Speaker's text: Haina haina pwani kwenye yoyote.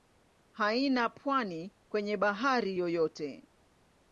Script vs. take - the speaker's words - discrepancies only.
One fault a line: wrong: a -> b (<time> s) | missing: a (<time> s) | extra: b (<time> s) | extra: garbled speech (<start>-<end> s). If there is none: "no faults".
missing: haina (1.1 s)
extra: bahari (2.2 s)